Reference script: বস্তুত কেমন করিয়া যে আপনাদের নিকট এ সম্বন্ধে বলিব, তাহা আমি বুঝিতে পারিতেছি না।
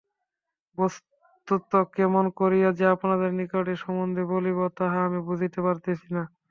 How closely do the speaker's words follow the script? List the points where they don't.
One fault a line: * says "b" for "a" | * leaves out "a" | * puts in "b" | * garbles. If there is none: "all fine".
all fine